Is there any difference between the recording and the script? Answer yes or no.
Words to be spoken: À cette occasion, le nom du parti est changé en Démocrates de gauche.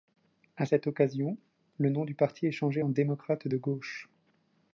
no